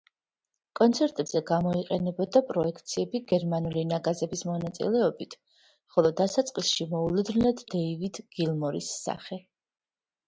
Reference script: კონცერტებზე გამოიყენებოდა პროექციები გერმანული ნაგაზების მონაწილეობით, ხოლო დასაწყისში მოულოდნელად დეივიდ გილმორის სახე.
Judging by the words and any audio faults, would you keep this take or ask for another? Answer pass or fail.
pass